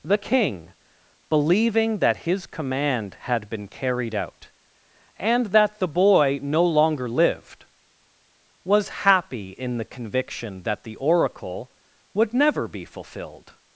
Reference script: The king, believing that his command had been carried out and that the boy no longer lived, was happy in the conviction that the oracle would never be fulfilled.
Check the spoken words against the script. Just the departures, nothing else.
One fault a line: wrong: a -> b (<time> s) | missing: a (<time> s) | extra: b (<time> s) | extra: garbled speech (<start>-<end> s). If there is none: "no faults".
no faults